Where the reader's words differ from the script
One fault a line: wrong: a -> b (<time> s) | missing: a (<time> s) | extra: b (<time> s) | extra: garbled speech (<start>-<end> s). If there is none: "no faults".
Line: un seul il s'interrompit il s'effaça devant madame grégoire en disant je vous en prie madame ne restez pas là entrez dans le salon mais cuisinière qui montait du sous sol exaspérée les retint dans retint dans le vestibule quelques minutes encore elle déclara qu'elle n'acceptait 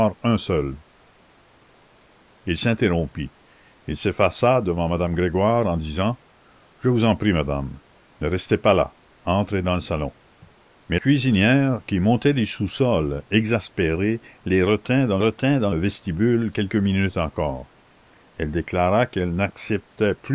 no faults